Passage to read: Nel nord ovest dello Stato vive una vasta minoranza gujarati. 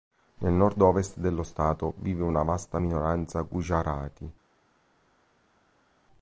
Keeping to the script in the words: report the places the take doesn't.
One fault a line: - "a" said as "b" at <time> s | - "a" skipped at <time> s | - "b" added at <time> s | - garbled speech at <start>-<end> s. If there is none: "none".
none